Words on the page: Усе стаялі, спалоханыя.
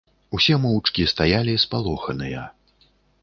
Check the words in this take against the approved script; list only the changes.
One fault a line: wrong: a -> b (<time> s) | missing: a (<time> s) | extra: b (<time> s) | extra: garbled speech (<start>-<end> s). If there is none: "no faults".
extra: моўчкі (0.6 s)